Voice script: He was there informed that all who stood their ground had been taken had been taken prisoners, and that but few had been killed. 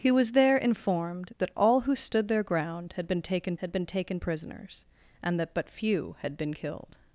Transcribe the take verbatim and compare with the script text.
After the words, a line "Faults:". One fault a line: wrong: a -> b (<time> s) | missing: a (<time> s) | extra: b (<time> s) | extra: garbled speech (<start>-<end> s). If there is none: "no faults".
He was there informed that all who stood their ground had been taken had been taken prisoners, and that but few had been killed.
Faults:
no faults